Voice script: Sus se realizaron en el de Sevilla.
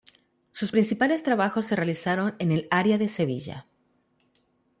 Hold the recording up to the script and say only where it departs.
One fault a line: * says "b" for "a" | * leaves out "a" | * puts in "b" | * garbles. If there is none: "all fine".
* puts in "principales trabajos"
* puts in "área"